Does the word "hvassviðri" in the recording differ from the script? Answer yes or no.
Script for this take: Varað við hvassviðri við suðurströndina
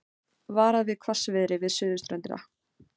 no